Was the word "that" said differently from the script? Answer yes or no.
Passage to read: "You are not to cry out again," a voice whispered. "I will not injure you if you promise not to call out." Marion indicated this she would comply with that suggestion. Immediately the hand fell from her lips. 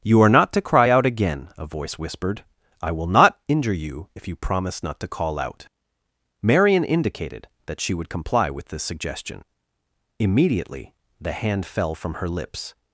yes